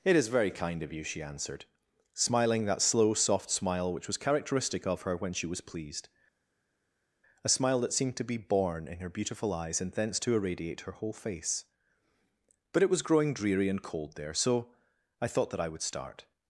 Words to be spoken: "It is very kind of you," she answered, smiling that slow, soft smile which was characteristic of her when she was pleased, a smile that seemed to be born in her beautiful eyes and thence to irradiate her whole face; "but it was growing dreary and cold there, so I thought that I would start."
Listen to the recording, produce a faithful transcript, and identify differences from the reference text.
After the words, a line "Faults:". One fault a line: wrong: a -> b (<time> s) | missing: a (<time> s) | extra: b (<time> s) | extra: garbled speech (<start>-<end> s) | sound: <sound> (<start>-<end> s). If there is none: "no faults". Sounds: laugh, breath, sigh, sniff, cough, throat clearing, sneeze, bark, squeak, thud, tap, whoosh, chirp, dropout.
"It is very kind of you," she answered, smiling that slow, soft smile which was characteristic of her when she was pleased, a smile that seemed to be born in her beautiful eyes and thence to irradiate her whole face; "but it was growing dreary and cold there, so I thought that I would start."
Faults:
no faults